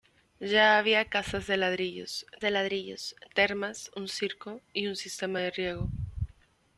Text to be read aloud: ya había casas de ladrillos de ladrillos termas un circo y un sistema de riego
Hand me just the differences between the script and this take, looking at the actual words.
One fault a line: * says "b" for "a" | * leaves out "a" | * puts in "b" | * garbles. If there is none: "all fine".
all fine